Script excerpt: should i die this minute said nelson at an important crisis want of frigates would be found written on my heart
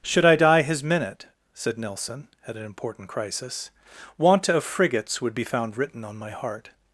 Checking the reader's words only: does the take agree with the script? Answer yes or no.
no